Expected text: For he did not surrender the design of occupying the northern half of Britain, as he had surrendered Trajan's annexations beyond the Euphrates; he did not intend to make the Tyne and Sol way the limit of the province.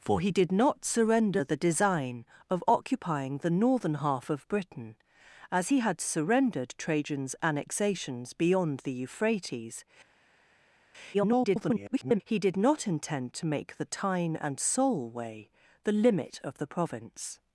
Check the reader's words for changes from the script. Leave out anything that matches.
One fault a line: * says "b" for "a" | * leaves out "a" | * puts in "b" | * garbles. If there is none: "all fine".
* garbles